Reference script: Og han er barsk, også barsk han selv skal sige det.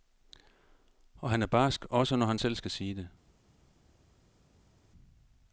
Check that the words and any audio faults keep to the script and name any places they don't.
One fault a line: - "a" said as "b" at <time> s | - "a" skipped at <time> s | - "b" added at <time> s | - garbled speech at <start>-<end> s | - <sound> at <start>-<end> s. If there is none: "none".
- "barsk" said as "når" at 2.1 s